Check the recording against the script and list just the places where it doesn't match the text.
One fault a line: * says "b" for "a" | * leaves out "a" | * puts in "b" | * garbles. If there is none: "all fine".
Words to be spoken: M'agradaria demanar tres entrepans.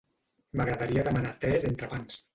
all fine